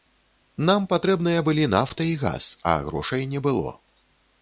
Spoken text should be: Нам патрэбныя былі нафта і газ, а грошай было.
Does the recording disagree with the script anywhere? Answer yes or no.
yes